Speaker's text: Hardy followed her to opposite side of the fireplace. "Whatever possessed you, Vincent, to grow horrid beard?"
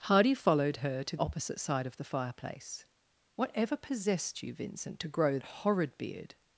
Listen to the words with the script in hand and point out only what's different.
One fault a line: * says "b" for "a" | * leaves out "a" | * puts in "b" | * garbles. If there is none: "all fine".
all fine